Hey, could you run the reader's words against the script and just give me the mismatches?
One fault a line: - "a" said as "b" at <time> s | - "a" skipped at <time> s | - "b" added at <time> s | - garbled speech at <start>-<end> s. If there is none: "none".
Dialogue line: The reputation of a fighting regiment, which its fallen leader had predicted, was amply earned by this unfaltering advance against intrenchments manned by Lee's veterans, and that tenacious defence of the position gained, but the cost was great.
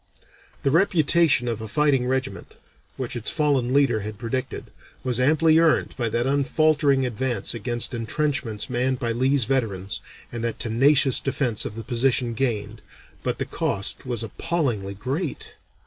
- "this" said as "that" at 6.1 s
- "appallingly" added at 14.2 s